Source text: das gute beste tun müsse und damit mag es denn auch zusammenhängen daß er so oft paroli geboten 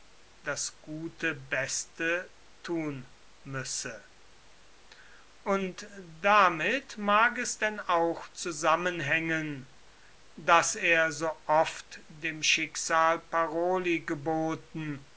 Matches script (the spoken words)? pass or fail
fail